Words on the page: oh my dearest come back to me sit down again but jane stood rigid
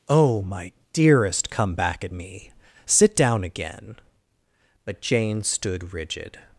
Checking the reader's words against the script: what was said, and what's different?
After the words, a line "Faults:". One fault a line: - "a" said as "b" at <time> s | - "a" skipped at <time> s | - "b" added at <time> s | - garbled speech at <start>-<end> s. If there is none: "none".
oh my dearest come back at me sit down again but jane stood rigid
Faults:
- "to" said as "at" at 2.0 s